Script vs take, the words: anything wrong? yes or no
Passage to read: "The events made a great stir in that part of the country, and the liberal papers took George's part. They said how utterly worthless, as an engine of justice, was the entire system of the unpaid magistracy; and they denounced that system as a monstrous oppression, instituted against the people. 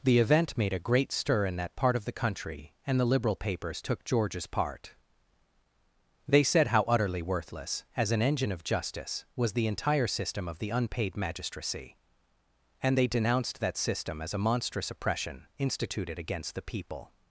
yes